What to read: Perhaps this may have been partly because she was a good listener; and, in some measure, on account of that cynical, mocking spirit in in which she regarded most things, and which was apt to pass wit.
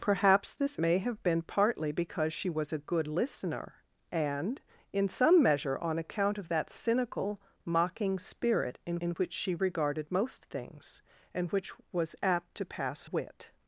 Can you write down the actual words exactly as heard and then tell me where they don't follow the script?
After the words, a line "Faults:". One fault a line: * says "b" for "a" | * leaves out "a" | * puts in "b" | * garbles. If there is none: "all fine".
Perhaps this may have been partly because she was a good listener; and, in some measure, on account of that cynical, mocking spirit in in which she regarded most things, and which was apt to pass wit.
Faults:
all fine